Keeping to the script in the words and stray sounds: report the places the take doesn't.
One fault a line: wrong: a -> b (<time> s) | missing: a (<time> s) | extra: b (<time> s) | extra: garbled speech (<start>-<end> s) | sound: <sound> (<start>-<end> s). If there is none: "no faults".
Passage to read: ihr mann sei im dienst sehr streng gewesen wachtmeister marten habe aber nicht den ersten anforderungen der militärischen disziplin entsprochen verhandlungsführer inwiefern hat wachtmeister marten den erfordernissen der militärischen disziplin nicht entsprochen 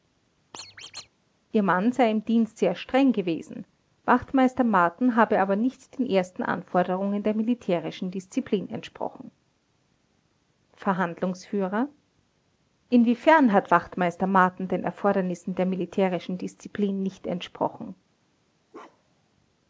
sound: squeak (0.5-1.1 s)
sound: bark (18.7-19.3 s)